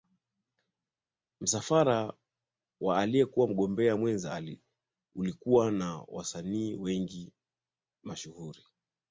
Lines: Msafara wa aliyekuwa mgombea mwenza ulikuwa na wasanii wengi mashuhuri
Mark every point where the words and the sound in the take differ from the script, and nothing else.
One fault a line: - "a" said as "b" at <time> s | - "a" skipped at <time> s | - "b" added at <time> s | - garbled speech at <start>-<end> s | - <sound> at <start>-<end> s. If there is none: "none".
none